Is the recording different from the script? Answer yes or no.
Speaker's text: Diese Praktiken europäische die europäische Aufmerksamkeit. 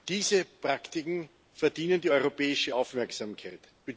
yes